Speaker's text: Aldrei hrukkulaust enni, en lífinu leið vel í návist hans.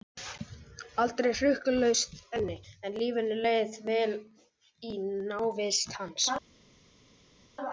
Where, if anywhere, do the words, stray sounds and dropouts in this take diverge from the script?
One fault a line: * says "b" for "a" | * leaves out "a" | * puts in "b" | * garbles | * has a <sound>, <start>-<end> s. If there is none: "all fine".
all fine